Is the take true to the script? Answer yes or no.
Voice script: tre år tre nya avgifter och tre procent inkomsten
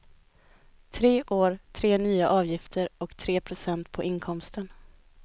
no